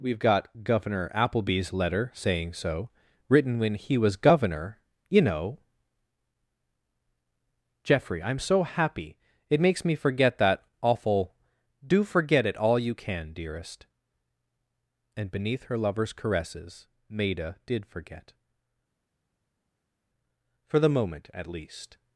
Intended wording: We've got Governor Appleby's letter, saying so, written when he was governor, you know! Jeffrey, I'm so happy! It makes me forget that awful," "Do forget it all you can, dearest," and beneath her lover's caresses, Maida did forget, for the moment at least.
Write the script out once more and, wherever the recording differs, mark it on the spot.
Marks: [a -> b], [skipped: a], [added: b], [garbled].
We've got Governor Appleby's letter, saying so, written when he was governor, you know! Jeffrey, I'm so happy! It makes me forget that awful," "Do forget it all you can, dearest," and beneath her lover's caresses, Maida did forget, for the moment at least.